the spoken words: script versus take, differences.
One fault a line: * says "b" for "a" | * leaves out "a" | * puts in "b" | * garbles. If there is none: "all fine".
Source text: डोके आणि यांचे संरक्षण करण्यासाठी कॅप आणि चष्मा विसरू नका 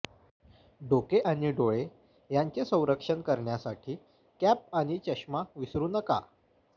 * puts in "डोळे"